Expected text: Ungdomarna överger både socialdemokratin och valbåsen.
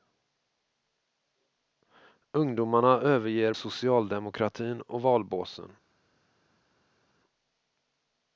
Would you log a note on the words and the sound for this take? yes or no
yes